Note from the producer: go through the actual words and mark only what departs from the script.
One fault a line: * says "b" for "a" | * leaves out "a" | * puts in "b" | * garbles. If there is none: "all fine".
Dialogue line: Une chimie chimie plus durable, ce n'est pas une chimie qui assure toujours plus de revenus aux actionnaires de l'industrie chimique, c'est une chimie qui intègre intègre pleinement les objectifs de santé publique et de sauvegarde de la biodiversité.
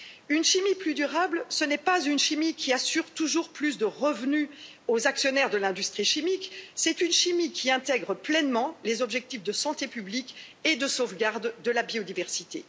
* leaves out "chimie"
* leaves out "intègre"